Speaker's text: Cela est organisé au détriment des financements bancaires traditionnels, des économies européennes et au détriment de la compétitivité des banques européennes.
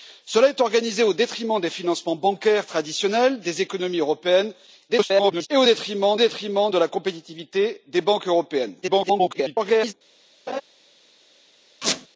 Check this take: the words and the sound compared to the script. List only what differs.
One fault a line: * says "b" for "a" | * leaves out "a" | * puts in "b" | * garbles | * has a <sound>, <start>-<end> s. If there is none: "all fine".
* garbles
* puts in "détriment"
* garbles
* has a laugh, 10.5-10.6 s
* has a squeak, 11.8-12.1 s